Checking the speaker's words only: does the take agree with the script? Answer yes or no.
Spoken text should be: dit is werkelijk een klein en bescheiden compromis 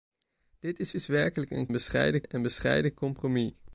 no